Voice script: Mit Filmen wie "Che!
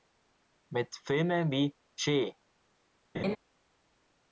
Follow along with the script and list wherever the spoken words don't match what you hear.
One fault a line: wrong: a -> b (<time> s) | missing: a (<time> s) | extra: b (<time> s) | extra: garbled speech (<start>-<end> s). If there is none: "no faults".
no faults